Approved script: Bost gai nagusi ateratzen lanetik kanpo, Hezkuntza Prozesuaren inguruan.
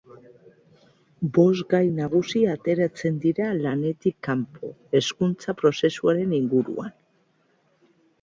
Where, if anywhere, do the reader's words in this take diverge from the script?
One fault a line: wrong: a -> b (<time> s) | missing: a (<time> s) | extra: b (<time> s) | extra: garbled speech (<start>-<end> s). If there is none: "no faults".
extra: dira (3.2 s)